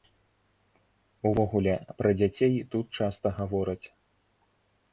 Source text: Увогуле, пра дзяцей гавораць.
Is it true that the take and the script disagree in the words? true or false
true